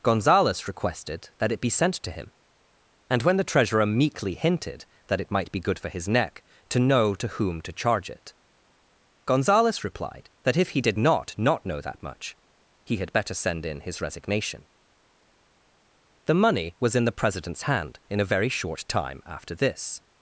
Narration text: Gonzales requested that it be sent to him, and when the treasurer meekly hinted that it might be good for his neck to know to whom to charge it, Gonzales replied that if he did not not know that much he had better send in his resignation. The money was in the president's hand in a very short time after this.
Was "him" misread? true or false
false